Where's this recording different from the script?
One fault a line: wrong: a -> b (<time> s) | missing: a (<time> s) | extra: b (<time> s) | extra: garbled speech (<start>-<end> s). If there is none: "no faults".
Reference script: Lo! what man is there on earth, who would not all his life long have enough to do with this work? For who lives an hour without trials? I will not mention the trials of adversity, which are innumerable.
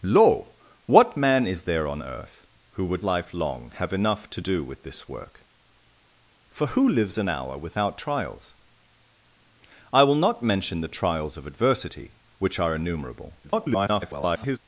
missing: not all his (3.0 s)
extra: garbled speech (13.4-14.6 s)